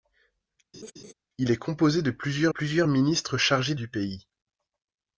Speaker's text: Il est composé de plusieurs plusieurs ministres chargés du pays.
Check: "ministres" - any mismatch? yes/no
no